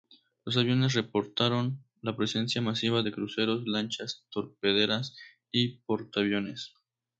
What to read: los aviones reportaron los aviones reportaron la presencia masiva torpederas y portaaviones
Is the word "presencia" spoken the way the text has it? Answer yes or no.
no